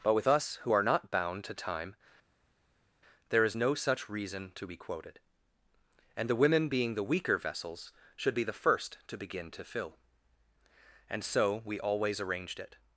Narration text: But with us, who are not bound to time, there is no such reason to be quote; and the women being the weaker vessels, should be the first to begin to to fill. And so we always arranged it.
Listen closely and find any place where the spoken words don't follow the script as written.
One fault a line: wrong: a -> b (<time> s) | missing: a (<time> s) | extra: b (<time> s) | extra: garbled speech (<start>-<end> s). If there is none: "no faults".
wrong: quote -> quoted (4.8 s)
missing: to (9.6 s)